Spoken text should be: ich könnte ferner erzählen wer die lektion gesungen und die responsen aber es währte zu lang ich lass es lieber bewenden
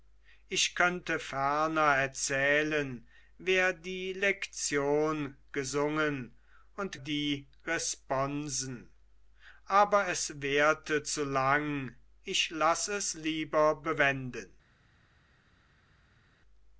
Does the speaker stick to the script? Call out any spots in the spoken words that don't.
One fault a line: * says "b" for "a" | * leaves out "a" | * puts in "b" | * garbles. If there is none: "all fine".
all fine